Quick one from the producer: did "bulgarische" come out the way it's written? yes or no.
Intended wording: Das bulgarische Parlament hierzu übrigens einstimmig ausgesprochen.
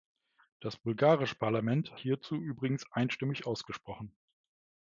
yes